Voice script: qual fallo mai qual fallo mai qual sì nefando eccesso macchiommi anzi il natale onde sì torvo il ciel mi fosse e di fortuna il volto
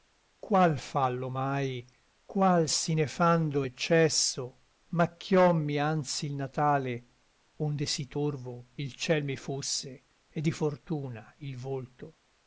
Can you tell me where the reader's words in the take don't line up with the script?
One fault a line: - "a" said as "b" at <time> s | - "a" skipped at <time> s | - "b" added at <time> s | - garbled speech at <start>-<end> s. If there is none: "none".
- "fallo mai qual" skipped at 2.7 s